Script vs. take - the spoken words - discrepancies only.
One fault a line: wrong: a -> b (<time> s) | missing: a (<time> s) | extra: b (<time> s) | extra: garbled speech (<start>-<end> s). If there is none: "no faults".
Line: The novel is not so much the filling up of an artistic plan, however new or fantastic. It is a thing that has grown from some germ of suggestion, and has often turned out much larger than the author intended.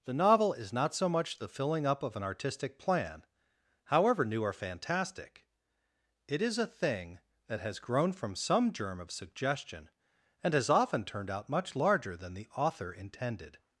no faults